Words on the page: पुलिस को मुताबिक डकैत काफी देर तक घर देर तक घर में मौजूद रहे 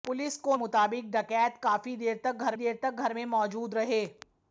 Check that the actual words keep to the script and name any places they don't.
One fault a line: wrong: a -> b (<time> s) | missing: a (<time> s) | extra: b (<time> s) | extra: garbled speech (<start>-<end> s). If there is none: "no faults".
no faults